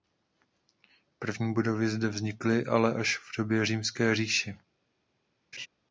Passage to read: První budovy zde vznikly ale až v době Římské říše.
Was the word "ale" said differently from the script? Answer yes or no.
no